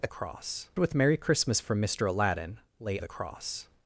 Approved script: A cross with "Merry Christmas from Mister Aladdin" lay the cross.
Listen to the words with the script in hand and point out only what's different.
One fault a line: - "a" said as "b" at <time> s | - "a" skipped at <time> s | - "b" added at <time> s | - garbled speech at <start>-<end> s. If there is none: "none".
none